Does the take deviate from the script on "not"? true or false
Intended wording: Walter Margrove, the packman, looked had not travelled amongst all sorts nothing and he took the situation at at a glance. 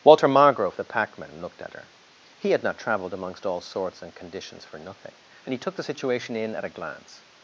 false